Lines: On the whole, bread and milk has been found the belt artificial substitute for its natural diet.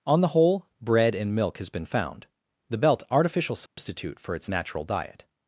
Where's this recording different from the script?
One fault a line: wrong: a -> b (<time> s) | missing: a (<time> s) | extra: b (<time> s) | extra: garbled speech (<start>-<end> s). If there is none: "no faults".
no faults